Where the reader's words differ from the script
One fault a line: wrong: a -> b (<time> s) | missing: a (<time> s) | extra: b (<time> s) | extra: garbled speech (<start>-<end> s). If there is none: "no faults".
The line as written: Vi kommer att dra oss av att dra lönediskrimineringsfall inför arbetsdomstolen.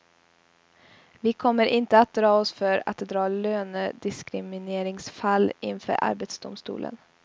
extra: inte (1.6 s)
wrong: av -> för (2.5 s)